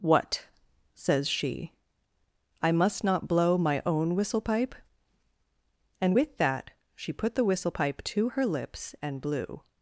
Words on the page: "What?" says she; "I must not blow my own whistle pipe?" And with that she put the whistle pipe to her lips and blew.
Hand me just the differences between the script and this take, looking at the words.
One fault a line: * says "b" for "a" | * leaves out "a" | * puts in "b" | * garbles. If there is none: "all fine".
all fine